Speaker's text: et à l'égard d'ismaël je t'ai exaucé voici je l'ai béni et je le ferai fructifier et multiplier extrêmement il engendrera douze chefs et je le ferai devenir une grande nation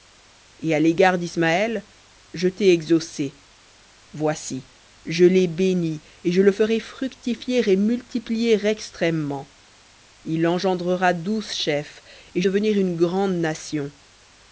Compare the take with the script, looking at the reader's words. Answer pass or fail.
fail